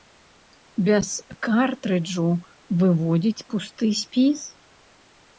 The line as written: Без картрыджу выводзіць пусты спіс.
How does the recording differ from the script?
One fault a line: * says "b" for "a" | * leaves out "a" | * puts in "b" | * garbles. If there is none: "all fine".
all fine